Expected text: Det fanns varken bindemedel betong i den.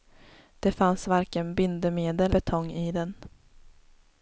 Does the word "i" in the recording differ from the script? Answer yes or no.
no